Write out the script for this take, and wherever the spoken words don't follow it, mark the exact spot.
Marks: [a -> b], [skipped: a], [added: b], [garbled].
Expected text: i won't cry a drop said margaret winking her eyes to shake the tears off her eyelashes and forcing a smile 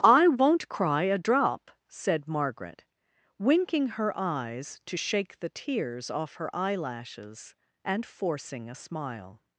i won't cry a drop said margaret winking her eyes to shake the tears off her eyelashes and forcing a smile